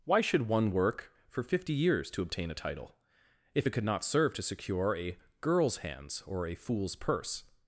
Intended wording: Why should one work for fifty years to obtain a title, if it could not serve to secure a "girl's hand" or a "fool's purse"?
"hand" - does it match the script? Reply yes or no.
no